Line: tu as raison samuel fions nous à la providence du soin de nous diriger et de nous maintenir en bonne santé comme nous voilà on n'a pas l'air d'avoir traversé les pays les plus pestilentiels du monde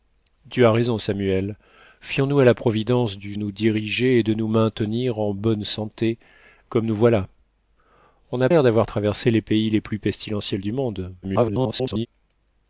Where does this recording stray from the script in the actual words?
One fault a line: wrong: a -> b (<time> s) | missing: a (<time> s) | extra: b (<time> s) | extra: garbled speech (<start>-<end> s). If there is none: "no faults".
missing: soin de (3.4 s)
missing: pas (8.5 s)
extra: garbled speech (11.2-12.1 s)